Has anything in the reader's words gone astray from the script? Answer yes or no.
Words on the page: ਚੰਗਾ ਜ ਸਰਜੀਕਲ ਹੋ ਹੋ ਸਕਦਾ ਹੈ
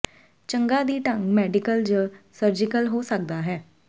yes